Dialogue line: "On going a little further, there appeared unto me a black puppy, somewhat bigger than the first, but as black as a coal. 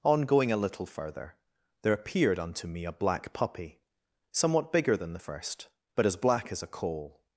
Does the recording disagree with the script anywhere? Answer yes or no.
no